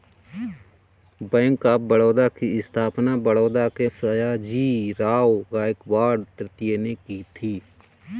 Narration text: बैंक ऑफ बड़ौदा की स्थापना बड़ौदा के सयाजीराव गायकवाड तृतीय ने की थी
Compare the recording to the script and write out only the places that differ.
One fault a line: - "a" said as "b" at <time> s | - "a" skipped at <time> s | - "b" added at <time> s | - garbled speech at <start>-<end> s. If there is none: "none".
none